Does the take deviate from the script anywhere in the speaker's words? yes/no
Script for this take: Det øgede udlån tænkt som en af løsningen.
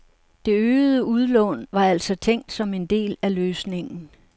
yes